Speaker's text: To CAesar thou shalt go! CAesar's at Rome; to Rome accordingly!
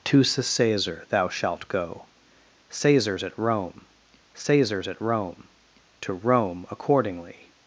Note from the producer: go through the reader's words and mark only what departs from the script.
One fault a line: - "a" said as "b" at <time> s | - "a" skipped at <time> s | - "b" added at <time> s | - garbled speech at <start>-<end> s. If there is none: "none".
- "caesar's at Rome" added at 4.4 s